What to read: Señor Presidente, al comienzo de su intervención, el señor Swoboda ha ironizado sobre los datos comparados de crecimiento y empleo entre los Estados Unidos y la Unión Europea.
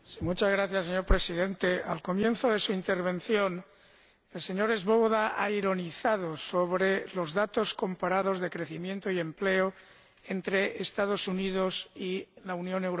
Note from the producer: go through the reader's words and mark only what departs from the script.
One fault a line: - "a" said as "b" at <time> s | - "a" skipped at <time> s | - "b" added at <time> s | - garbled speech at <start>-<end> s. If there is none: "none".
none